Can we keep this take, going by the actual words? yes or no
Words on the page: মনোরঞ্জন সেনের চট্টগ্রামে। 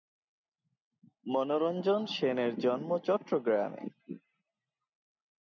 no